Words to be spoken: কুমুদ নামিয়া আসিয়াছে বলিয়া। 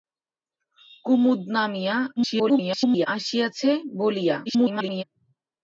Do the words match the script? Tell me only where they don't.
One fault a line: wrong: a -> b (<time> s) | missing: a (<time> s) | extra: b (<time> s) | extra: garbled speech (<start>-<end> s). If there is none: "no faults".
extra: garbled speech (2.2-3.1 s)
extra: garbled speech (4.5-5.0 s)